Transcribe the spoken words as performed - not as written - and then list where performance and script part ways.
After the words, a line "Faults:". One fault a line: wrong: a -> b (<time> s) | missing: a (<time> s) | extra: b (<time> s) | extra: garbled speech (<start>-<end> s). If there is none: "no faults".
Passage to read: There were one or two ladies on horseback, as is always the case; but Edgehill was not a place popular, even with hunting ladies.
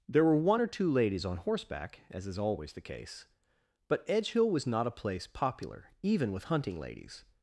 There were one or two ladies on horseback, as is always the case; but Edgehill was not a place popular, even with hunting ladies.
Faults:
no faults